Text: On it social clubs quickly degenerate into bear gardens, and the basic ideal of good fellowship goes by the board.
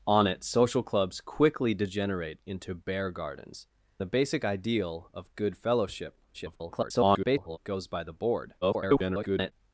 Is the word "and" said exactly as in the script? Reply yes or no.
no